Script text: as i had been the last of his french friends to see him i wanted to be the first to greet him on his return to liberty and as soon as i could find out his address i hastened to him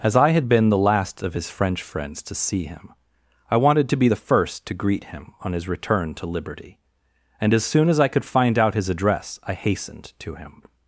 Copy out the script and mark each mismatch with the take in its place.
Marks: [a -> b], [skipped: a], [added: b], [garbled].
as i had been the last of his french friends to see him i wanted to be the first to greet him on his return to liberty and as soon as i could find out his address i hastened to him